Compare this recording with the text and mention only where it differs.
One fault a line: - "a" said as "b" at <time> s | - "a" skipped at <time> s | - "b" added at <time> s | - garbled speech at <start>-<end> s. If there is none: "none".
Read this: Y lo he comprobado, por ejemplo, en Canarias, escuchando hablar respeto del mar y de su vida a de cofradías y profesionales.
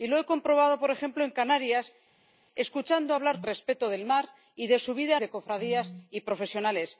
none